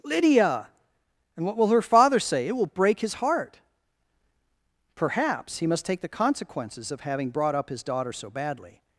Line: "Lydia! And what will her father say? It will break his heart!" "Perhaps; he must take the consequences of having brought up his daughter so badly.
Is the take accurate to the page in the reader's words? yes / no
yes